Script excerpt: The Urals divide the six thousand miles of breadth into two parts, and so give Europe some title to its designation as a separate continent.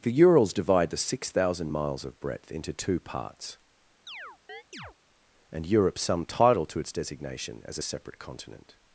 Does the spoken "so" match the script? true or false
false